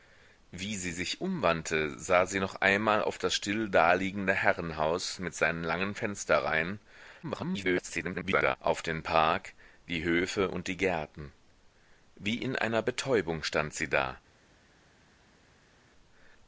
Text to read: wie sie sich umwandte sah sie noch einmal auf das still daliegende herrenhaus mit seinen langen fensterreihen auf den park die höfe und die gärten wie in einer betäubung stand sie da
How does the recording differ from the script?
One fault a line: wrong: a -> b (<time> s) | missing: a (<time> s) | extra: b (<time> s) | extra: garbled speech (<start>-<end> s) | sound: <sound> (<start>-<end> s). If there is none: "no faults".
extra: garbled speech (7.2-8.6 s)